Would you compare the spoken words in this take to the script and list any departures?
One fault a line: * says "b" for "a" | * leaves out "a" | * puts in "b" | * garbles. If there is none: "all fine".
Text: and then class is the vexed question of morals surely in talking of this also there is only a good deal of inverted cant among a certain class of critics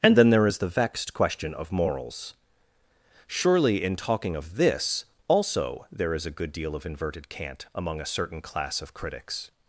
* says "there" for "class"
* leaves out "only"